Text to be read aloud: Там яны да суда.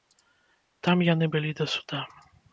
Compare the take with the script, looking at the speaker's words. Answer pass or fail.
fail